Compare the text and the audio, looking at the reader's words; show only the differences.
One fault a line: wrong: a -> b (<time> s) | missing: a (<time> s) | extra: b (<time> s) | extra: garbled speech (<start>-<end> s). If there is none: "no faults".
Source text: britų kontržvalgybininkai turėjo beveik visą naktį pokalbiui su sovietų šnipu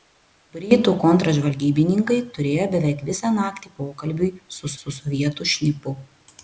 extra: su (4.8 s)